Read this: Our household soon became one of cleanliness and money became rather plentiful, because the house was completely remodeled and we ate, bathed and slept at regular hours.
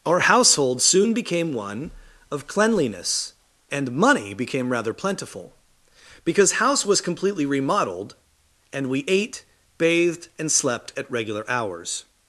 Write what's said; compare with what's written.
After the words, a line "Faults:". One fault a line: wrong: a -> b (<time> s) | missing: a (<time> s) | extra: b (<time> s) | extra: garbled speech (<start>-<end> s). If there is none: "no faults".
Our household soon became one of cleanliness and money became rather plentiful, because house was completely remodeled and we ate, bathed and slept at regular hours.
Faults:
missing: the (6.5 s)